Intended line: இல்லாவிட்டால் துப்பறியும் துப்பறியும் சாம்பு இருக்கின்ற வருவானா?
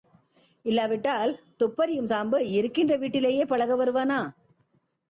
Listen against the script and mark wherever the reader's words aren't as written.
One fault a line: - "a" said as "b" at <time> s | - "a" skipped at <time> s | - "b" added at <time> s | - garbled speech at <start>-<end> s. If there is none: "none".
- "துப்பறியும்" skipped at 2.1 s
- "வீட்டிலேயே பழக" added at 3.0 s